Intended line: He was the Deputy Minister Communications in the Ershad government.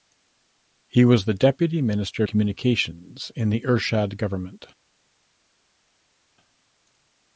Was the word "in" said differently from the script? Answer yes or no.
no